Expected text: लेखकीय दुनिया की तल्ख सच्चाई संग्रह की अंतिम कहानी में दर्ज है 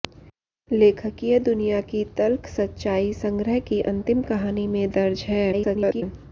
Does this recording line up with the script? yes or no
no